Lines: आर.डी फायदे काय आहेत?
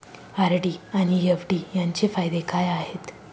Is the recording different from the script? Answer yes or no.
yes